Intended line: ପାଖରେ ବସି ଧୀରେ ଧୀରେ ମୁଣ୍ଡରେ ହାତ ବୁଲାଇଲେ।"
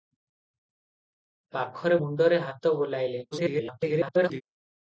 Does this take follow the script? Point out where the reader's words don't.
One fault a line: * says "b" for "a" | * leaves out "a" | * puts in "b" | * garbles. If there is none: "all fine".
* leaves out "ବସି ଧୀରେ ଧୀରେ"
* garbles